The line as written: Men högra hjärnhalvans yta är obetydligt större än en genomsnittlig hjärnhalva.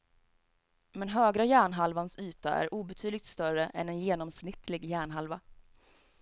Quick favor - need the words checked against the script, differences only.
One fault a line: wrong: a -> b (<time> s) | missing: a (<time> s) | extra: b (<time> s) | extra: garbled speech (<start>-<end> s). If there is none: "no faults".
no faults